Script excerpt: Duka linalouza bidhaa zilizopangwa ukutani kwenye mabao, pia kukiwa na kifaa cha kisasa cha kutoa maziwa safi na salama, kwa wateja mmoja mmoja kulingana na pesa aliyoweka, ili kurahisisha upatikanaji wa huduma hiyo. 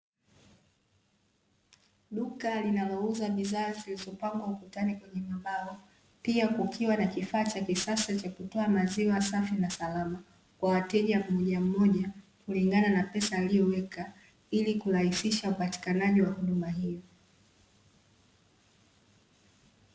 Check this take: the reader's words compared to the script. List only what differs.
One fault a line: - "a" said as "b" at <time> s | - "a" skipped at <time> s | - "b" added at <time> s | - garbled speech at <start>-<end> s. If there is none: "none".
none